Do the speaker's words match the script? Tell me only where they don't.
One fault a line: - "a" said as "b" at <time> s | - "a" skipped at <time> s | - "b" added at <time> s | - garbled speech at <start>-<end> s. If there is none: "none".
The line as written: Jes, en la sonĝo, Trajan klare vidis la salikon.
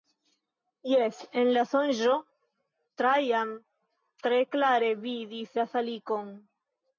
- "tre" added at 4.2 s